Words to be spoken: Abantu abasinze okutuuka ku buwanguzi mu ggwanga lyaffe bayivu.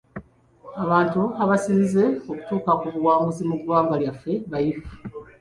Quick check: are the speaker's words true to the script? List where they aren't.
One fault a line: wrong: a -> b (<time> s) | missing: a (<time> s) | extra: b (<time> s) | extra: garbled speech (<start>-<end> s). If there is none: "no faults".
no faults